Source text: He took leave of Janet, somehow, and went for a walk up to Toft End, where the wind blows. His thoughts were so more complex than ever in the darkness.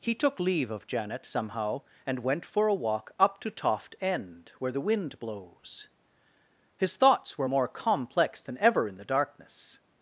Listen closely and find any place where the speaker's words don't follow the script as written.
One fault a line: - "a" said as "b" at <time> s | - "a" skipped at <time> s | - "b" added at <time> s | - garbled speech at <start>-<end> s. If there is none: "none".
- "so" skipped at 7.5 s